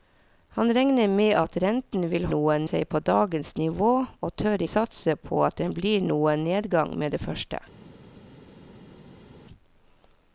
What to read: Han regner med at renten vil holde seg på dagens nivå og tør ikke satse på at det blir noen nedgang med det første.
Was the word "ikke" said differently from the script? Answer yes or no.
yes